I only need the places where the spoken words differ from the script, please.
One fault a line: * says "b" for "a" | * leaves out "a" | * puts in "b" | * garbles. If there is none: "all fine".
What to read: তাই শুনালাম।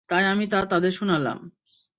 * puts in "আমি তা তাদের"